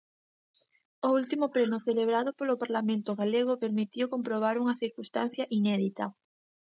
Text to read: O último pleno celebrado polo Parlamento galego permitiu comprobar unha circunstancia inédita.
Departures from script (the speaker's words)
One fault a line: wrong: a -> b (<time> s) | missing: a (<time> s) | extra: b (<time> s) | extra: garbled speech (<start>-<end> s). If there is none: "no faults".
no faults